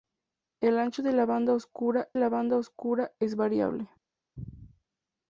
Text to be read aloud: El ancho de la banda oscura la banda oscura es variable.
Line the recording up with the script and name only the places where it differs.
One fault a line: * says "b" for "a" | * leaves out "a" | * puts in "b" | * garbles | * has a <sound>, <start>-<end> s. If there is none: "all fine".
all fine